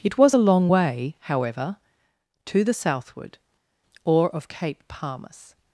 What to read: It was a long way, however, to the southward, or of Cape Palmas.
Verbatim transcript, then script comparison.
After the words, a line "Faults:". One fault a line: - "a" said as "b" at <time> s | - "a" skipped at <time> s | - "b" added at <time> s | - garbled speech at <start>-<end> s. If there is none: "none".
It was a long way, however, to the southward, or of Cape Palmas.
Faults:
none